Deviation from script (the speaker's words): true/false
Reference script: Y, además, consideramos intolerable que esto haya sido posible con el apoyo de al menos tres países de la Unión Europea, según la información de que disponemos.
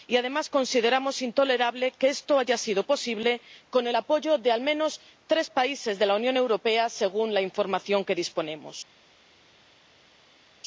false